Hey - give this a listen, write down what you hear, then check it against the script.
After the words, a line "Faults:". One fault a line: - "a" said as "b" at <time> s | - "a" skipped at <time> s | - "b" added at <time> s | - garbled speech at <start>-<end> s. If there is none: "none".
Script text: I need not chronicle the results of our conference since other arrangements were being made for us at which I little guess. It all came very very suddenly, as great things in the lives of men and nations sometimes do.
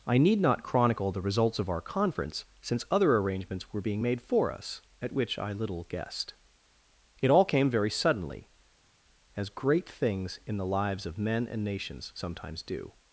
I need not chronicle the results of our conference since other arrangements were being made for us at which I little guessed. It all came very suddenly, as great things in the lives of men and nations sometimes do.
Faults:
- "guess" said as "guessed" at 5.8 s
- "very" skipped at 7.9 s